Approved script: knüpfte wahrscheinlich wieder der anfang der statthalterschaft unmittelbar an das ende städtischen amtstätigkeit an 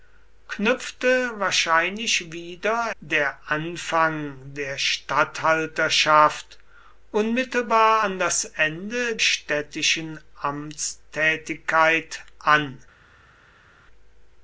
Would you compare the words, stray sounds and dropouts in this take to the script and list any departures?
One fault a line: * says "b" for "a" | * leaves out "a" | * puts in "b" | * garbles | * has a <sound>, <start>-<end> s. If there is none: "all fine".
all fine